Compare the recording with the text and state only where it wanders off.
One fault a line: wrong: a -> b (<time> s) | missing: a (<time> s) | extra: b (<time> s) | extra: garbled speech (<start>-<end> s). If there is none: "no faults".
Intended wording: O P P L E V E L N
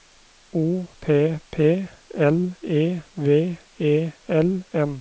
no faults